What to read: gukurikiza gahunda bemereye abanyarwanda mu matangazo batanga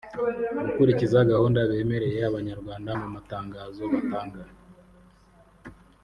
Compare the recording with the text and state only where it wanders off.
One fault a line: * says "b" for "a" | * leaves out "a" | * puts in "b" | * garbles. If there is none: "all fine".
all fine